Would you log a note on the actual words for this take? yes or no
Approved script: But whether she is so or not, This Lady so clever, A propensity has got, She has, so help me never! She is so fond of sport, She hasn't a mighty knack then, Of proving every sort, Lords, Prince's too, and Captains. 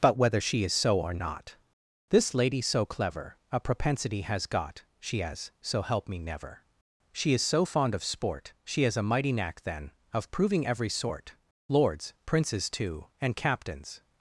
yes